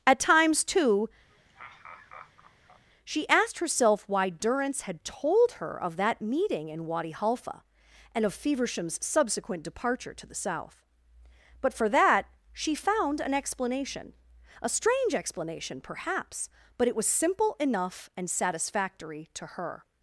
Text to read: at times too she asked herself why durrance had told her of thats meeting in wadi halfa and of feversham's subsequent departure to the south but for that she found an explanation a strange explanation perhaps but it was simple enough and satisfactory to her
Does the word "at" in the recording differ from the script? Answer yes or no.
no